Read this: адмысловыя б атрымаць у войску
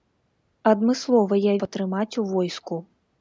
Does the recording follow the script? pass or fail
pass